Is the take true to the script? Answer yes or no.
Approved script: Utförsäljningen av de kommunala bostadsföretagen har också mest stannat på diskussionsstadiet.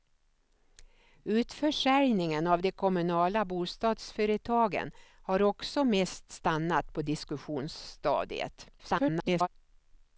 no